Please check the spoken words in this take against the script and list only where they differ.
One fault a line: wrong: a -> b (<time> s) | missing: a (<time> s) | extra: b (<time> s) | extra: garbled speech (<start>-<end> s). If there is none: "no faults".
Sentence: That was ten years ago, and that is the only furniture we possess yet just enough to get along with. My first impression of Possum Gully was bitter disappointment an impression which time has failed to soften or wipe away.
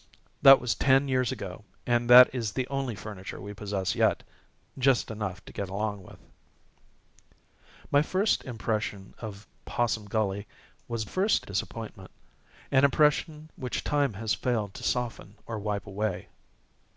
wrong: bitter -> first (11.0 s)